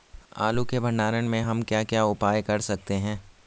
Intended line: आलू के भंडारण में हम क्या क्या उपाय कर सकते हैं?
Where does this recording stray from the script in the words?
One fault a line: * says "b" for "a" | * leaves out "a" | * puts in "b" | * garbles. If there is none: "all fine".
all fine